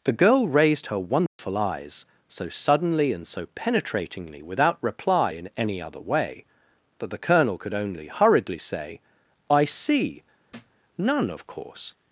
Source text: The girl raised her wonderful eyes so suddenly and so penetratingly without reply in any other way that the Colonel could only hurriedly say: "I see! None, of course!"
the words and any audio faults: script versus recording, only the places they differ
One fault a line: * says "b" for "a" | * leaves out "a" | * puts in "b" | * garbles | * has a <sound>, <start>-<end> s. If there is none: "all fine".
* has a dropout, 1.3-1.4 s
* has a thud, 10.5-10.8 s